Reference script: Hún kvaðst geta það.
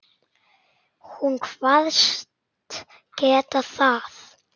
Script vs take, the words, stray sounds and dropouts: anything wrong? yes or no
no